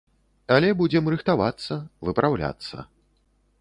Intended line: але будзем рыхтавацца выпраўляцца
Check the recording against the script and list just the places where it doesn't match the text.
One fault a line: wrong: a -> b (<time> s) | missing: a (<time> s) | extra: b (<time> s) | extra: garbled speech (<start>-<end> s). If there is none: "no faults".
no faults